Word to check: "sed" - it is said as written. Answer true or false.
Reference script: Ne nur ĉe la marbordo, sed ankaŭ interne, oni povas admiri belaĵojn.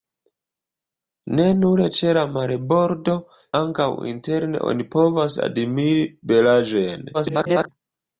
false